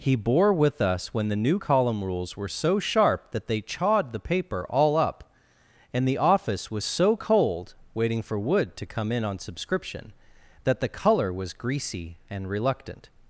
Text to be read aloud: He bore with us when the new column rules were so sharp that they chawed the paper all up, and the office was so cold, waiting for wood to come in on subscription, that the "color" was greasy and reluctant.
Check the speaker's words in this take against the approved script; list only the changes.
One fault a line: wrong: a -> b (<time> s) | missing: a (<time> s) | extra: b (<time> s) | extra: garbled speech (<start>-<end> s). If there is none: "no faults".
no faults